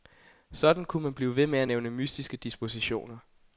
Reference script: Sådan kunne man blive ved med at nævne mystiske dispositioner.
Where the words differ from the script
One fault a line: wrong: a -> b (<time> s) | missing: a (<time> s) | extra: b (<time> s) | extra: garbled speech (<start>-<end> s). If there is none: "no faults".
no faults